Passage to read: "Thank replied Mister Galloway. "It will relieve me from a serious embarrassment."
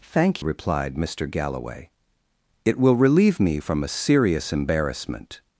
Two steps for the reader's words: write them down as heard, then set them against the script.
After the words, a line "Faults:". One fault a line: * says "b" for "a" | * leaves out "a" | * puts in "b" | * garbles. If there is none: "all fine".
"Thank replied Mister Galloway. "It will relieve me from a serious embarrassment."
Faults:
all fine